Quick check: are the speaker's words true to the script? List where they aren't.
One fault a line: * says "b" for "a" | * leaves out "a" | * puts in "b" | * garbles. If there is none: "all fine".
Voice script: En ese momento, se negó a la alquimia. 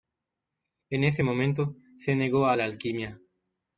all fine